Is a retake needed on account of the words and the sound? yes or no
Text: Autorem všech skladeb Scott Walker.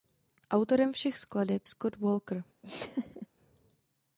yes